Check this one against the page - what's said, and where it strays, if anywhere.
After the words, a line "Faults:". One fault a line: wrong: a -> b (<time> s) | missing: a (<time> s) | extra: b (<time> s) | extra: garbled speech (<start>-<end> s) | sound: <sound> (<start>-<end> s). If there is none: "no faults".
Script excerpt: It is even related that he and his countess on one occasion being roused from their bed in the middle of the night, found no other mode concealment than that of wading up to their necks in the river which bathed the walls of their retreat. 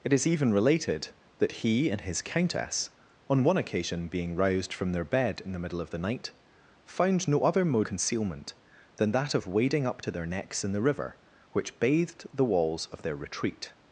It is even related that he and his countess on one occasion being roused from their bed in the middle of the night, found no other mode concealment than that of wading up to their necks in the river which bathed the walls of their retreat.
Faults:
no faults